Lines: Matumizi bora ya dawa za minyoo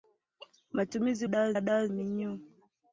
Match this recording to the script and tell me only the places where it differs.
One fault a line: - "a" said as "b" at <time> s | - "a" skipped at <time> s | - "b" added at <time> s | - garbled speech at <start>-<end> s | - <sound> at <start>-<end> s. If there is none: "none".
- "bora" said as "dawa" at 1.3 s
- "za" skipped at 1.9 s